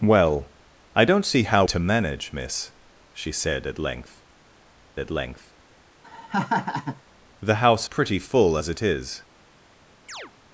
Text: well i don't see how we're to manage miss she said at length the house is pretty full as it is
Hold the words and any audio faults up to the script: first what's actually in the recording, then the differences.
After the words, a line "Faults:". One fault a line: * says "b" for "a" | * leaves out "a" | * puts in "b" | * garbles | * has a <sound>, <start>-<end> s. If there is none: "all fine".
well i don't see how to manage miss she said at length at length the house pretty full as it is
Faults:
* leaves out "we're"
* puts in "at length"
* has a laugh, 6.0-7.0 s
* leaves out "is"
* has a chirp, 10.1-10.3 s